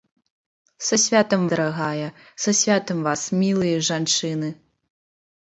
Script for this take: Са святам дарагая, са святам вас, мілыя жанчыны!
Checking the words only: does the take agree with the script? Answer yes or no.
yes